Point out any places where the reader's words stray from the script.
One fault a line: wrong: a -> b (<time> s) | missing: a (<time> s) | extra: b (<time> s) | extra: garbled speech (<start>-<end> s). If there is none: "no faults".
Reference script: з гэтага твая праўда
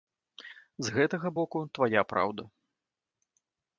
extra: боку (1.4 s)